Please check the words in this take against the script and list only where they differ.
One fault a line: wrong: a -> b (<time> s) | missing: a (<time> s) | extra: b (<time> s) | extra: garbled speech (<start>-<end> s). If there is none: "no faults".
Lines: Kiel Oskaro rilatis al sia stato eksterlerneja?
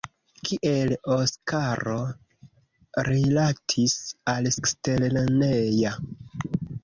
missing: sia stato (4.5 s)